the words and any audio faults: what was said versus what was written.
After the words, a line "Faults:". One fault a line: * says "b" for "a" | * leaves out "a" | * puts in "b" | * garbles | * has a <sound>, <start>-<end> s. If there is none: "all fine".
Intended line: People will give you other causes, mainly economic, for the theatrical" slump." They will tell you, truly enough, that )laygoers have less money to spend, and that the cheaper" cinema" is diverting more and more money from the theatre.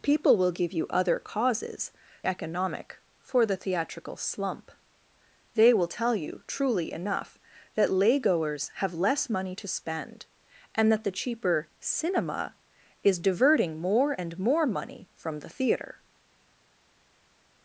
People will give you other causes, economic, for the theatrical" slump." They will tell you, truly enough, that )laygoers have less money to spend, and that the cheaper" cinema" is diverting more and more money from the theatre.
Faults:
* leaves out "mainly"